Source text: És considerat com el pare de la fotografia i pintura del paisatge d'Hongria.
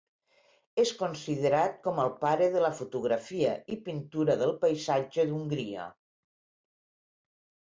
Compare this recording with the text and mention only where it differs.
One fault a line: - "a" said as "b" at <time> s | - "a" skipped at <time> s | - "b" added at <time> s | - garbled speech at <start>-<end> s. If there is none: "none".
none